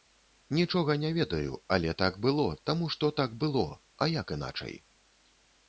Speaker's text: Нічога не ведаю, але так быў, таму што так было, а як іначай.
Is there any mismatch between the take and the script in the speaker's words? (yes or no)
yes